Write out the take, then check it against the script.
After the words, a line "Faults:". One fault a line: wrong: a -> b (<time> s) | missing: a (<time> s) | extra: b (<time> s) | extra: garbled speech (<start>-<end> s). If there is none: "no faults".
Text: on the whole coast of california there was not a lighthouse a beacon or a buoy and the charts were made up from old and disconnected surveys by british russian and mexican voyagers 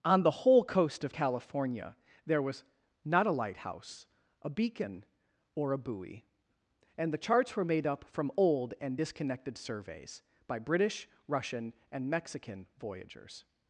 on the whole coast of california there was not a lighthouse a beacon or a buoy and the charts were made up from old and disconnected surveys by british russian and mexican voyagers
Faults:
no faults